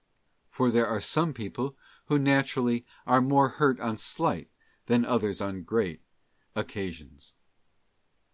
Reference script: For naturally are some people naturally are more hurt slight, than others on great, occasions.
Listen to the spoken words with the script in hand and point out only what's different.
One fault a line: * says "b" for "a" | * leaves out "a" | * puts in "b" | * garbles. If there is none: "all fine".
* says "there" for "naturally"
* puts in "who"
* puts in "on"